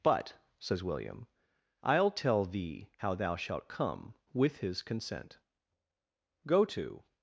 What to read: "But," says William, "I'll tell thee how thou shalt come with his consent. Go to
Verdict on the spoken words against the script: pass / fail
pass